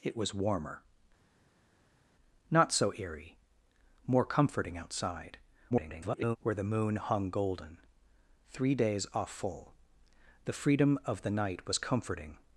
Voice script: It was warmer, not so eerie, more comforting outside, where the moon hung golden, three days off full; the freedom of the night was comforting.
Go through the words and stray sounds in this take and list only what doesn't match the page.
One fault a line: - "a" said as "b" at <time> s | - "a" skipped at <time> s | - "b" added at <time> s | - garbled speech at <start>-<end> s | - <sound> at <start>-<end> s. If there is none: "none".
- garbled speech at 5.7-6.4 s